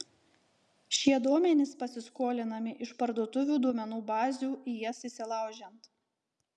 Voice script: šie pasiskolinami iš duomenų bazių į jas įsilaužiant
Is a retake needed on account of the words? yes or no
yes